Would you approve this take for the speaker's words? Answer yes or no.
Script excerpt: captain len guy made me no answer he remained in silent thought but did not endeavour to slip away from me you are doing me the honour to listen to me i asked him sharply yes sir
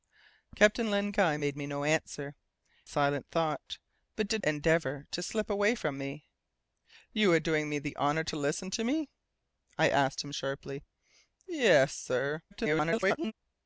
no